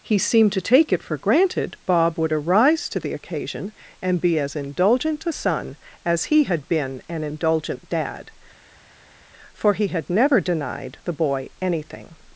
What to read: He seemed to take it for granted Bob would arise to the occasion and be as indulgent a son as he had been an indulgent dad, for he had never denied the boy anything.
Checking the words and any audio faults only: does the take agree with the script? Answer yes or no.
yes